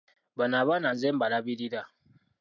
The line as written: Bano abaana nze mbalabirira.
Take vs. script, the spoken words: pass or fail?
pass